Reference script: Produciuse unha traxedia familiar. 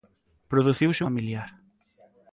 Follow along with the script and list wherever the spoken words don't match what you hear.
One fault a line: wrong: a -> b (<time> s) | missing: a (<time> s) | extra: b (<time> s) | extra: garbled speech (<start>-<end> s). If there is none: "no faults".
missing: unha traxedia (1.0 s)